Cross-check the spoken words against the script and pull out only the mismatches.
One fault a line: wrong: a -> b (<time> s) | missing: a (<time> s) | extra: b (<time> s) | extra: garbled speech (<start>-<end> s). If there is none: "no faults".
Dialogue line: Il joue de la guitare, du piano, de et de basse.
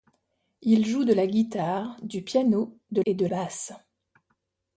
no faults